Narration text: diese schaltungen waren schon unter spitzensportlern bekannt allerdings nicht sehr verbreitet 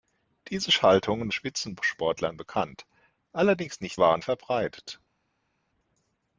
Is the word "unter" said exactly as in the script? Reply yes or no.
no